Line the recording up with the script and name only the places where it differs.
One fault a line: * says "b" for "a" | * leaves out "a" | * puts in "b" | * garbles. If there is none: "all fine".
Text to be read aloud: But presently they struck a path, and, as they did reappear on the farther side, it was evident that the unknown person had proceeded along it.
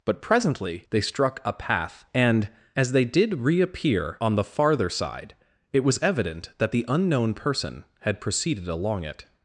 all fine